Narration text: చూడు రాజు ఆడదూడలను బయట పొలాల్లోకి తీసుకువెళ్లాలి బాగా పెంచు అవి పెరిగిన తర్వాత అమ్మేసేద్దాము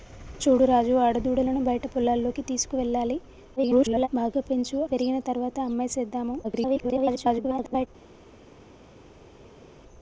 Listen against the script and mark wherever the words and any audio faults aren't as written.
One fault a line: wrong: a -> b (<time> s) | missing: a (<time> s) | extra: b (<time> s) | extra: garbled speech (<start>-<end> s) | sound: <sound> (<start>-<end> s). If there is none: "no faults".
extra: garbled speech (3.6-4.1 s)
missing: అవి (4.8 s)
extra: garbled speech (6.4-7.9 s)